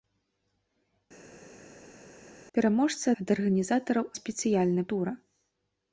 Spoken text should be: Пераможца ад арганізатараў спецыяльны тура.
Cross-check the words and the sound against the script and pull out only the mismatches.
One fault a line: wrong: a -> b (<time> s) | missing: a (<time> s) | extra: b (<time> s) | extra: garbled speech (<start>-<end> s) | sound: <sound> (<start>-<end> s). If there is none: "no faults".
no faults